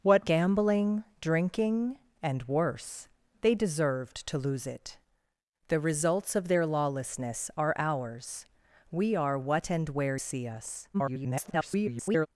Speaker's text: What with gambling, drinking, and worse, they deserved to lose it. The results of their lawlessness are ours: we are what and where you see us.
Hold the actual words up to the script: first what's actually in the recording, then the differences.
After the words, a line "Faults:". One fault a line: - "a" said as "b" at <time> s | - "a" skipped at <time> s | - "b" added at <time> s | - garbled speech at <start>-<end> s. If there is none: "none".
What gambling, drinking, and worse, they deserved to lose it. The results of their lawlessness are ours: we are what and where see us. [garbled]
Faults:
- "with" skipped at 0.3 s
- "you" skipped at 10.2 s
- garbled speech at 10.9-12.3 s